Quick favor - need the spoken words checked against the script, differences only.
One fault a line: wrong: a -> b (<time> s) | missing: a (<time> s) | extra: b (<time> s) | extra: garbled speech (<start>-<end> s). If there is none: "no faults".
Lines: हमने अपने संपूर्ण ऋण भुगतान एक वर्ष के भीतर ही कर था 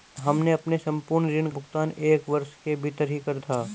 no faults